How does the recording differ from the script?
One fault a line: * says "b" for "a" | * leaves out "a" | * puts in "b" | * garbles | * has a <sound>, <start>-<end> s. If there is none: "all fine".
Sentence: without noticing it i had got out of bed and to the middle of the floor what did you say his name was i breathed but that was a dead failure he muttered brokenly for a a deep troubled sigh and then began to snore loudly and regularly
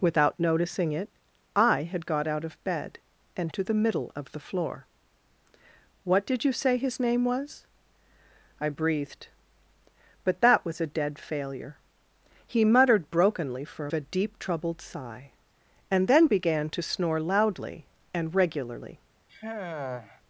* has a sigh, 19.3-20.2 s